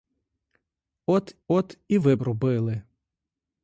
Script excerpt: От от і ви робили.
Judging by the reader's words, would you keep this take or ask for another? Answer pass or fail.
pass